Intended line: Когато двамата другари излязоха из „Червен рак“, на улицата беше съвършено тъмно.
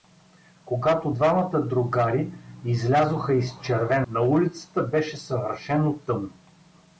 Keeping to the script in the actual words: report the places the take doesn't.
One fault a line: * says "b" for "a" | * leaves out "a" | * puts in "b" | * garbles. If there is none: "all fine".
* leaves out "рак"